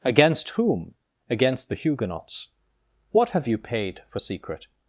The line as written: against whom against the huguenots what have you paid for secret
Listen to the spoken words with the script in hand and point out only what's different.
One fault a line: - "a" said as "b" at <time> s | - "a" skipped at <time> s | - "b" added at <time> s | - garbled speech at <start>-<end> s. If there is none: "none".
none